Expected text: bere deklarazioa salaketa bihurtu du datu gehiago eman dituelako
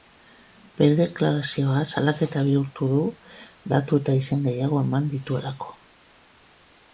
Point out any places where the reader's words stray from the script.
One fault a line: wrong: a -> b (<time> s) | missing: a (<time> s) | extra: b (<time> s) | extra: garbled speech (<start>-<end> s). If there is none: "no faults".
extra: eta izen (4.0 s)